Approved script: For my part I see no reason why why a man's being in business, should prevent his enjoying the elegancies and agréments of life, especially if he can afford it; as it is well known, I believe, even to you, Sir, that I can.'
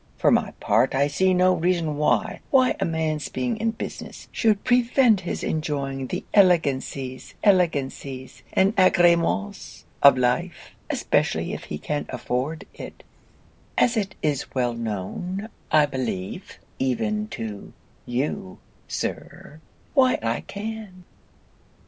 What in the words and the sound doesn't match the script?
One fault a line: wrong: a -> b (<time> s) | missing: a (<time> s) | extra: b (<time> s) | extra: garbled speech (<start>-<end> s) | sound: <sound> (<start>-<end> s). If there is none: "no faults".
extra: elegancies (7.4 s)
wrong: that -> why (19.9 s)